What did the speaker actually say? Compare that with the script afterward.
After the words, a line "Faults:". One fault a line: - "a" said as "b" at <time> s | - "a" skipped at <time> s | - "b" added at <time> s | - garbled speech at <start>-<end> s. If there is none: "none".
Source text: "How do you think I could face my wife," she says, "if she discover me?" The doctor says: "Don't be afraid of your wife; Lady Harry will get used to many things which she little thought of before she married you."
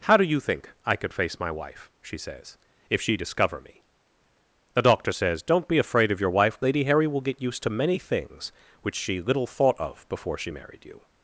"How do you think I could face my wife," she says, "if she discover me?" The doctor says: "Don't be afraid of your wife; Lady Harry will get used to many things which she little thought of before she married you."
Faults:
none